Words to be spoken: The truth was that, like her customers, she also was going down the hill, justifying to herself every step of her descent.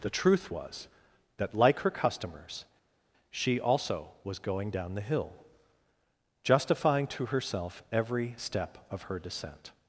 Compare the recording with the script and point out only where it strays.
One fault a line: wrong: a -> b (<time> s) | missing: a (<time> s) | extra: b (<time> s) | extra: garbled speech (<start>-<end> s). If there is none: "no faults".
no faults